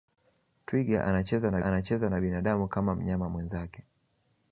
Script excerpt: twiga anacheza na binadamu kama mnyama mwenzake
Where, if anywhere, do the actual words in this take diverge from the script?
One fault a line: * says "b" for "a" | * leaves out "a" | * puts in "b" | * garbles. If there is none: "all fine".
* puts in "anacheza na"